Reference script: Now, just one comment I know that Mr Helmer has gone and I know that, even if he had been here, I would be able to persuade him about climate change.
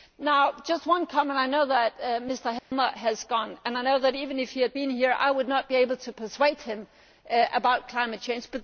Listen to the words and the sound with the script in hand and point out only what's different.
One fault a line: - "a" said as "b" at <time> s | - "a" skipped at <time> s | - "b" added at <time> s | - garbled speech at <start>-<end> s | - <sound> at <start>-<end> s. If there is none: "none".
- dropout at 2.6-2.7 s
- "not" added at 5.5 s